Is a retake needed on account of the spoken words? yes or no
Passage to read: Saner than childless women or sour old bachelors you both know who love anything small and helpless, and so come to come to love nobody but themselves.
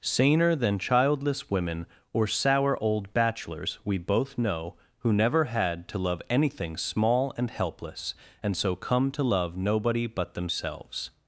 yes